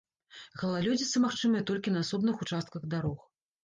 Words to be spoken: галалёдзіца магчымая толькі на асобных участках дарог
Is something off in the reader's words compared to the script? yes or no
no